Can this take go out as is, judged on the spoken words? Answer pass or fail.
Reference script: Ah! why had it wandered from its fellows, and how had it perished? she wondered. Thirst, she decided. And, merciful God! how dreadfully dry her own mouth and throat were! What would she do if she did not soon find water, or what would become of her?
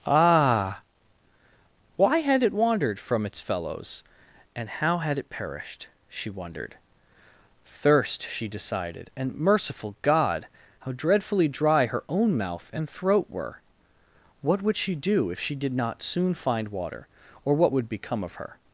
pass